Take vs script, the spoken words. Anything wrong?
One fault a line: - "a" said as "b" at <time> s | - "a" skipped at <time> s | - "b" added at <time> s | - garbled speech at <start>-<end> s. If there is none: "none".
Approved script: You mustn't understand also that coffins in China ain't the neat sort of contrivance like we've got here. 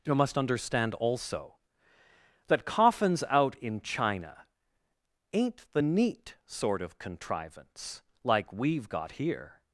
- "mustn't" said as "must" at 0.1 s
- "out" added at 3.3 s